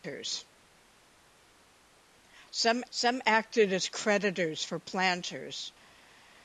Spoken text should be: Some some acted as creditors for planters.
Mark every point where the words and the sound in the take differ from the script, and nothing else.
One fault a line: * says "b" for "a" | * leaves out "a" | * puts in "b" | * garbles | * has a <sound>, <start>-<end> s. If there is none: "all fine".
all fine